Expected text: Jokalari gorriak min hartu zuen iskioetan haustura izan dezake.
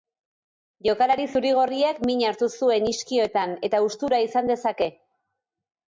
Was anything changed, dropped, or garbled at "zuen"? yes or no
no